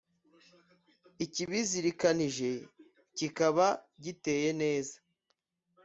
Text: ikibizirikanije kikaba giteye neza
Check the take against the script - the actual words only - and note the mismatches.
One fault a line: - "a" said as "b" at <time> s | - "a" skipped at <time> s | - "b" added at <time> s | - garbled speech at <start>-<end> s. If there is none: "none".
none